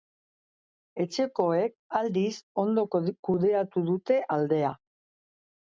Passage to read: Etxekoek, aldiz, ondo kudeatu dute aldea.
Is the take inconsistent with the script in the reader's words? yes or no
no